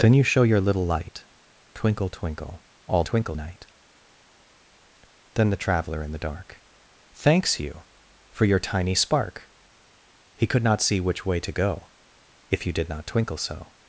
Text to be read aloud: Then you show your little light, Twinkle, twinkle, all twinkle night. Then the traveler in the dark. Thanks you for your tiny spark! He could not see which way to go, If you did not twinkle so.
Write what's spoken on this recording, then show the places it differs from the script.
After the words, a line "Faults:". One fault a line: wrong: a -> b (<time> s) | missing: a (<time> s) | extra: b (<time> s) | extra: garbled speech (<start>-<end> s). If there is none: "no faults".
Then you show your little light, Twinkle, twinkle, all twinkle night. Then the traveler in the dark. Thanks you for your tiny spark! He could not see which way to go, If you did not twinkle so.
Faults:
no faults